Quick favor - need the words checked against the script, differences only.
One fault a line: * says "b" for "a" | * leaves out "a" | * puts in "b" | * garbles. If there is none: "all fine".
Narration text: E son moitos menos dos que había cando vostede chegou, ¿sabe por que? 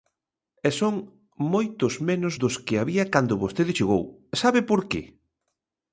all fine